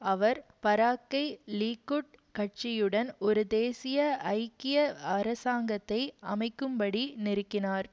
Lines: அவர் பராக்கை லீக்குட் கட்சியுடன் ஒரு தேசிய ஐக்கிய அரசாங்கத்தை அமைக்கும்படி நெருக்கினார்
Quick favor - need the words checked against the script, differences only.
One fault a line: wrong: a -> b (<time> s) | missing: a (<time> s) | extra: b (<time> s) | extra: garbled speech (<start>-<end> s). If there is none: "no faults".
no faults